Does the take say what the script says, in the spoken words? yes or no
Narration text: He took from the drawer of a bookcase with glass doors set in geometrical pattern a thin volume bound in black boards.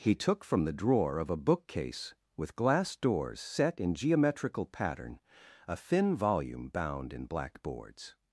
yes